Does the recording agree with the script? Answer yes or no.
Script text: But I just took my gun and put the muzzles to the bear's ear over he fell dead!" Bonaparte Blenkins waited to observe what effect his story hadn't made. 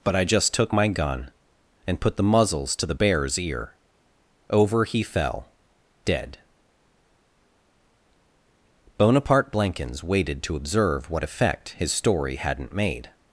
yes